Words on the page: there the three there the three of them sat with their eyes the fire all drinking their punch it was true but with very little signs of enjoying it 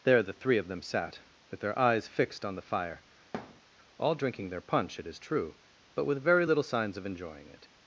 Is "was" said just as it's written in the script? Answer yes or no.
no